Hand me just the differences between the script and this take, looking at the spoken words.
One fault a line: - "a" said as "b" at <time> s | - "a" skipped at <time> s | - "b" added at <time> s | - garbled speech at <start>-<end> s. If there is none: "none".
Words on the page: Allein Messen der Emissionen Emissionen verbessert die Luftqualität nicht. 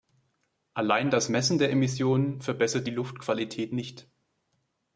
- "das" added at 1.1 s
- "Emissionen" skipped at 2.4 s